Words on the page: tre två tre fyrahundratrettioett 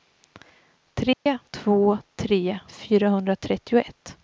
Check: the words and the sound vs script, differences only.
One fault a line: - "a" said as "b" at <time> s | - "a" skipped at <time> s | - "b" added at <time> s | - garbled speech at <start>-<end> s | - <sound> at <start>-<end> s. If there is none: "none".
- dropout at 1.1-1.3 s